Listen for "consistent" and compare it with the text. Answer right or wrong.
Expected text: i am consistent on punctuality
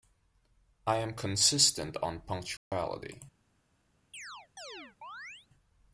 right